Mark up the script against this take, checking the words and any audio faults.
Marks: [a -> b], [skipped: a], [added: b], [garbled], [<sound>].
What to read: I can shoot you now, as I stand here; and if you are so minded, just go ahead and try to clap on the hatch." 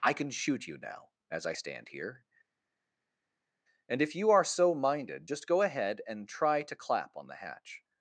I can shoot you now, as I stand here; and if you are so minded, just go ahead and try to clap on the hatch."